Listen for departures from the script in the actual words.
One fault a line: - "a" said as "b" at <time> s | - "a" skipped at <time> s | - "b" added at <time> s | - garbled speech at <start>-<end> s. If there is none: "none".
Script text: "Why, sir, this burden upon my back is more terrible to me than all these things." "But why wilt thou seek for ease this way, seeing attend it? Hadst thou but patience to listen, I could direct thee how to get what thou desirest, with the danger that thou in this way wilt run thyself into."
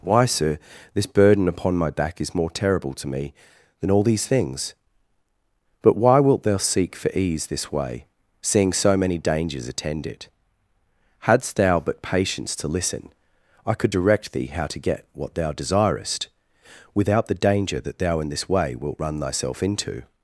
- "so many dangers" added at 8.7 s
- "with" said as "without" at 16.9 s